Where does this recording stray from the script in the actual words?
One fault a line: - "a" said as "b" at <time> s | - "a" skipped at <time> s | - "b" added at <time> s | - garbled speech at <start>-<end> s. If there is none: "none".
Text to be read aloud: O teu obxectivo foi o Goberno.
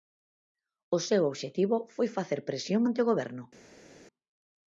- "teu" said as "seu" at 1.1 s
- "facer presión ante" added at 2.2 s